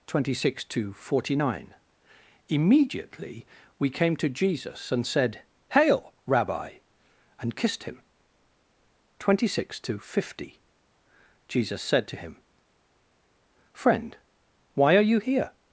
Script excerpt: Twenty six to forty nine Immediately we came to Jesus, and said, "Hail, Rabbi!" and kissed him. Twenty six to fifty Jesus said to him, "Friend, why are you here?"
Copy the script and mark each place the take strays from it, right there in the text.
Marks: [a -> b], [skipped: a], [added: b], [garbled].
Twenty six to forty nine Immediately we came to Jesus, and said, "Hail, Rabbi!" and kissed him. Twenty six to fifty Jesus said to him, "Friend, why are you here?"